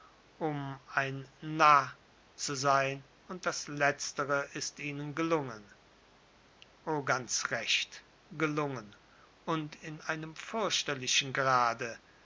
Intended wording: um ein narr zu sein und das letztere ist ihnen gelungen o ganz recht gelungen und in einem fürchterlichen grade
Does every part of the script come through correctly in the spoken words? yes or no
yes